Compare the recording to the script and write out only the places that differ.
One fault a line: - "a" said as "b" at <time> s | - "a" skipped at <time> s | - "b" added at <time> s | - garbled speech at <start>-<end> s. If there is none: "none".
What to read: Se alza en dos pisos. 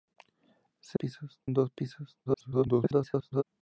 - "alza" said as "pisos" at 0.9 s
- garbled speech at 2.3-3.4 s